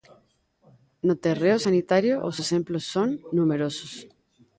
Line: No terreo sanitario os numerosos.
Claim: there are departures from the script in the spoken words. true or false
true